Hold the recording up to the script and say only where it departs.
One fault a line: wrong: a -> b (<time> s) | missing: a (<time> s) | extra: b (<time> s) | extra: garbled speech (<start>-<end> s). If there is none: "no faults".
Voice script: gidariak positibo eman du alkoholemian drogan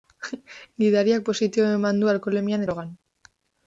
no faults